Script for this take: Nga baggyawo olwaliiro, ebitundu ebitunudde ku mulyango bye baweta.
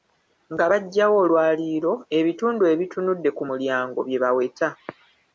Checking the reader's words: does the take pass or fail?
pass